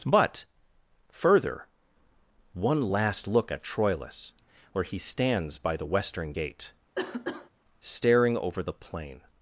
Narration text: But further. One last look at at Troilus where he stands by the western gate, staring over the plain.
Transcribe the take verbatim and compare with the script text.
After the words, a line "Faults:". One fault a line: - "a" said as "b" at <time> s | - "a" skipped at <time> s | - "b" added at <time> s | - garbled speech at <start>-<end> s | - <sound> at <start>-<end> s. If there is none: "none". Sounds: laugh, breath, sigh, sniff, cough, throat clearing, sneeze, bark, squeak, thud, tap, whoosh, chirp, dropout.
But further. One last look at Troilus where he stands by the western gate, staring over the plain.
Faults:
- "at" skipped at 3.6 s
- cough at 6.9-7.5 s